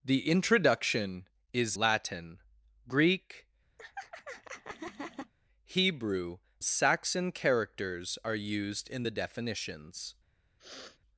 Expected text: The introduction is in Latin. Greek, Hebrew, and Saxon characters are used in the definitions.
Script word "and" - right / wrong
wrong